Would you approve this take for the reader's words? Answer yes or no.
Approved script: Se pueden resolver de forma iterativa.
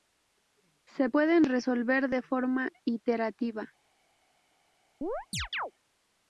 yes